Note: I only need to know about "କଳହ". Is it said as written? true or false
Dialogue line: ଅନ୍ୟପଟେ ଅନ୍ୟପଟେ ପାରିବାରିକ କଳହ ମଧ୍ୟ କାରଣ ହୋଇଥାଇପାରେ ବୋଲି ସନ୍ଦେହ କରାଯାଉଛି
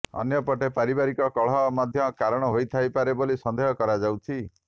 true